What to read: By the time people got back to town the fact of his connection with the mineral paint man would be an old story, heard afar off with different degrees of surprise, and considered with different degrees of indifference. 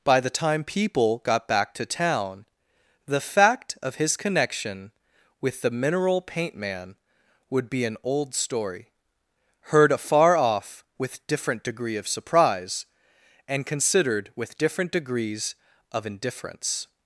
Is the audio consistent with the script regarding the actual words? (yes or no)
no